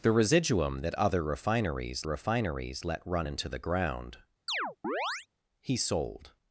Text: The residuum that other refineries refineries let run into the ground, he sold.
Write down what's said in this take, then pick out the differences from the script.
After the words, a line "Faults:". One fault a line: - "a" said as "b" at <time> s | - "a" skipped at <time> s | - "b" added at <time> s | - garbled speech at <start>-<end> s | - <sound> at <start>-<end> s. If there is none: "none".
The residuum that other refineries refineries let run into the ground, he sold.
Faults:
- chirp at 4.5-5.3 s